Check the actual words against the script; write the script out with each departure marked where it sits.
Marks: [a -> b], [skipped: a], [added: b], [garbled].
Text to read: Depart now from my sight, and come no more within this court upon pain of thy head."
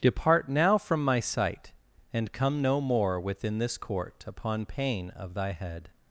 Depart now from my sight, and come no more within this court upon pain of thy head."